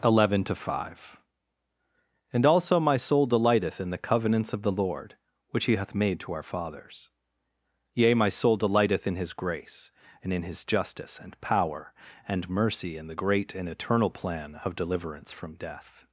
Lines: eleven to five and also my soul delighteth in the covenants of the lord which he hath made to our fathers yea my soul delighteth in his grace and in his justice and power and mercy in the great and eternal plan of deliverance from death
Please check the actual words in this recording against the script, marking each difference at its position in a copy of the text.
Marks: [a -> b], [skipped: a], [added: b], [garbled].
eleven to five and also my soul delighteth in the covenants of the lord which he hath made to our fathers yea my soul delighteth in his grace and in his justice and power and mercy in the great and eternal plan of deliverance from death